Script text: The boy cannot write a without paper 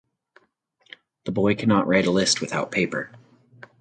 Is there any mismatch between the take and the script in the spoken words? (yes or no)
yes